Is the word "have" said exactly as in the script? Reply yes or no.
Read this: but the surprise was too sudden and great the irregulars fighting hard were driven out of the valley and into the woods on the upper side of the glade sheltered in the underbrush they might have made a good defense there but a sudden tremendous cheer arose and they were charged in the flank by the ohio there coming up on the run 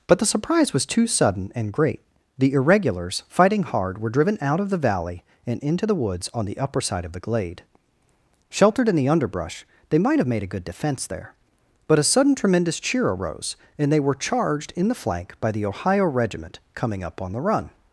yes